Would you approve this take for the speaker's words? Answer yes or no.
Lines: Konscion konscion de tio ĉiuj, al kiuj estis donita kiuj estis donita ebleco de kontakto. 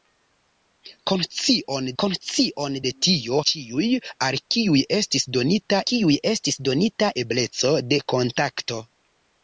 yes